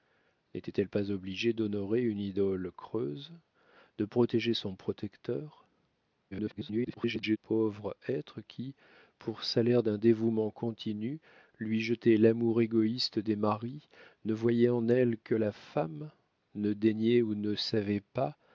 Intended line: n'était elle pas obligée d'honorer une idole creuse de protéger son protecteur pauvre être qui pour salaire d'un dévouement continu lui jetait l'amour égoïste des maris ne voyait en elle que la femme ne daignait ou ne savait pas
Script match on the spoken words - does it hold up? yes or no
no